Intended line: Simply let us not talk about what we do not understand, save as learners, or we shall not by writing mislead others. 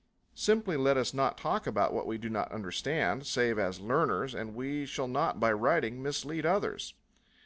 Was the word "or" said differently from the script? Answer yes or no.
yes